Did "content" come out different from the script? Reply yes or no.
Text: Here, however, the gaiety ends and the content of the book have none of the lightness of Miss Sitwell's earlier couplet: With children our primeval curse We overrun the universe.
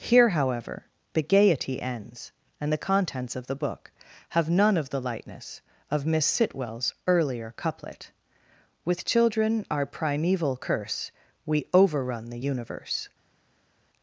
yes